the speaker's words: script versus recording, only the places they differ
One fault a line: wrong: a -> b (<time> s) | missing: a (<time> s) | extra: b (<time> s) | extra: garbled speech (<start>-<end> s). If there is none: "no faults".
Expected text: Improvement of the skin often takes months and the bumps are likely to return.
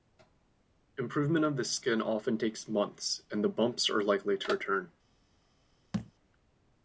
no faults